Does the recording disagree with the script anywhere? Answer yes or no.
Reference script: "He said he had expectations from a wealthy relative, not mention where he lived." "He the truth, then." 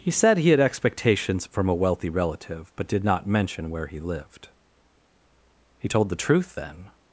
yes